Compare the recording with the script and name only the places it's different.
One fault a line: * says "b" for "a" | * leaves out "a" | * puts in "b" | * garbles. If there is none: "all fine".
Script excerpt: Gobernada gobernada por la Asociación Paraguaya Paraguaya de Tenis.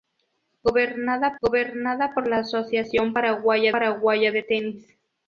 all fine